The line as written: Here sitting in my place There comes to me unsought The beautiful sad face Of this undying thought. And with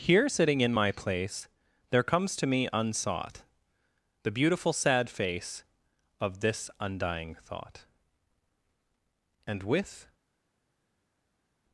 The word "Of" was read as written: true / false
true